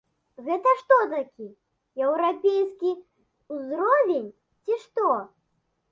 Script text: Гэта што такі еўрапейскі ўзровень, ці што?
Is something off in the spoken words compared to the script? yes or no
no